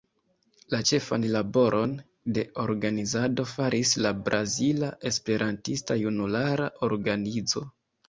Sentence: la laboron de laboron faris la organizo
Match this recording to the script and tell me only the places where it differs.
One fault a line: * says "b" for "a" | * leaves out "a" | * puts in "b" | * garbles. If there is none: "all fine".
* puts in "ĉefan"
* says "organizado" for "laboron"
* puts in "brazila esperantista junulara"